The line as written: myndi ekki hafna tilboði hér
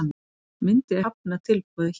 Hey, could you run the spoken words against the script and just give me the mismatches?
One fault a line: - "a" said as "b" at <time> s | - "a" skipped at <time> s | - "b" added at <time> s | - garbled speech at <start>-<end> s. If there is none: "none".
- "ekki" skipped at 1.0 s